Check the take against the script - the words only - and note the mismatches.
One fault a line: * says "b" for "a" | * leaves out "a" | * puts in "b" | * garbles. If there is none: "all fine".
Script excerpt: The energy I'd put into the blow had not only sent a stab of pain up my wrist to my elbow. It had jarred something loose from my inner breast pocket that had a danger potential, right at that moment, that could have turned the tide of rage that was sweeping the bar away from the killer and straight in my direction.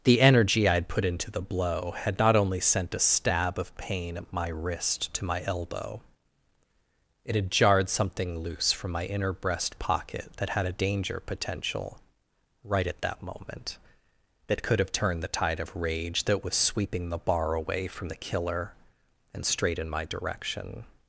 * says "at" for "up"